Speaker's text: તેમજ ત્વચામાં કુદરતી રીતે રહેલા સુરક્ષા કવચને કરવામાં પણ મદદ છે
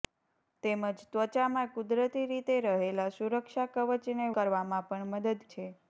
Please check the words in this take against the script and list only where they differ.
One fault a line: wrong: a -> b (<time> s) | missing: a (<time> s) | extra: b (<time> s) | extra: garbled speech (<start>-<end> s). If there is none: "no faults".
no faults